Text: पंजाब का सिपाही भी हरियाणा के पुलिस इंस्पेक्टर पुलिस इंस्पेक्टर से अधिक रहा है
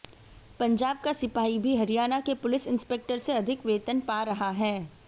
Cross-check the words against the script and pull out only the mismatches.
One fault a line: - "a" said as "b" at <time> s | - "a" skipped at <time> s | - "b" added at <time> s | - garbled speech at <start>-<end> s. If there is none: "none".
- "पुलिस इंस्पेक्टर से अधिक" said as "से अधिक वेतन पा" at 3.2 s